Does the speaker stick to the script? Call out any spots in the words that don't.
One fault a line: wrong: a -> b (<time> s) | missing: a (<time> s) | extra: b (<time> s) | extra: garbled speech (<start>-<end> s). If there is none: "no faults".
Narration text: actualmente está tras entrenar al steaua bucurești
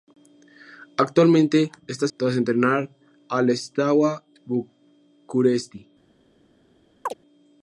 no faults